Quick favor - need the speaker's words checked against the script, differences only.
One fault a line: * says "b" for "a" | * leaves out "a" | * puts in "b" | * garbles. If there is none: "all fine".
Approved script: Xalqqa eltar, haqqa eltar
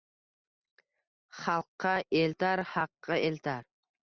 all fine